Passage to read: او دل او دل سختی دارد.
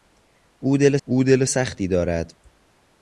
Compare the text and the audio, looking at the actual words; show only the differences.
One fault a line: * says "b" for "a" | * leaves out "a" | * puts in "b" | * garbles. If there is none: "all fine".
all fine